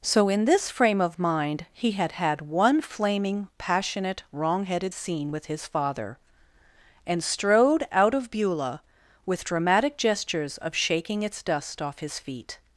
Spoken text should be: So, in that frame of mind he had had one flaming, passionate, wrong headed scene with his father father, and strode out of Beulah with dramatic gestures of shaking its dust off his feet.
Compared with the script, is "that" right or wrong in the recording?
wrong